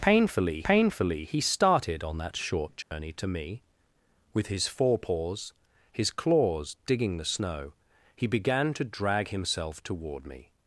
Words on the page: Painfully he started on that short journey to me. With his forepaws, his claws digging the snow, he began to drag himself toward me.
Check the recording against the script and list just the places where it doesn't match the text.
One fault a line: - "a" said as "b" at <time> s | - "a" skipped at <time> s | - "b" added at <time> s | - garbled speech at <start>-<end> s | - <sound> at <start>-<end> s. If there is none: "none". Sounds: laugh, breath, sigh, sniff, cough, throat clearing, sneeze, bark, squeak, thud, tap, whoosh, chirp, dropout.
- "painfully" added at 0.6 s
- dropout at 2.8-2.9 s